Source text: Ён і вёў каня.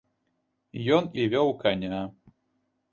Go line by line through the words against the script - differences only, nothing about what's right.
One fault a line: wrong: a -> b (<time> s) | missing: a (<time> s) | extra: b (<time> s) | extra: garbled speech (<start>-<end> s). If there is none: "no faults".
no faults